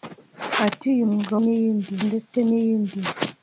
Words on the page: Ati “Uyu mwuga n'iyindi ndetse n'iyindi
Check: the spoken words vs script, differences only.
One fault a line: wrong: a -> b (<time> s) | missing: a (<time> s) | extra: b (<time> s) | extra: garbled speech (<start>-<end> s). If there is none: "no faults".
no faults